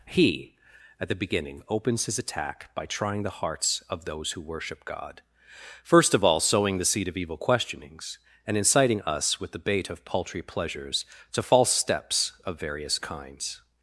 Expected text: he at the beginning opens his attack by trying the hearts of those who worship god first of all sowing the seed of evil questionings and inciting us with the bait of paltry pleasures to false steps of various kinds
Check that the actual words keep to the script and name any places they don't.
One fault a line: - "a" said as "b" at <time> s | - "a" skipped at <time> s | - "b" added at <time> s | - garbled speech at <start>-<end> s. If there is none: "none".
none